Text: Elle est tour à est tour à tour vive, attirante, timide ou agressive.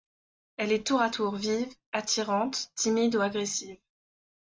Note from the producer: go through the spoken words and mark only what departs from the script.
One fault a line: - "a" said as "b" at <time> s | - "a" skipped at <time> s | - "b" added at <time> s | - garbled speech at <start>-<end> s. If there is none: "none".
- "est tour à" skipped at 1.1 s